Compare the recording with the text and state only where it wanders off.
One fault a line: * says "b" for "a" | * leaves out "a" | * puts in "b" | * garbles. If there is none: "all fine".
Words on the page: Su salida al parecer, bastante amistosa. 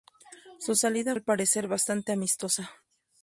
all fine